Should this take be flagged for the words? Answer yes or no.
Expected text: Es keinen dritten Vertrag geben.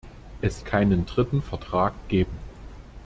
no